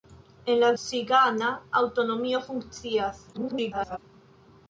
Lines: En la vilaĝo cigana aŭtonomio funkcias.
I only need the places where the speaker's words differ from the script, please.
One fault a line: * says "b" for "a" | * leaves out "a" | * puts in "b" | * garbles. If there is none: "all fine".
* leaves out "vilaĝo"
* garbles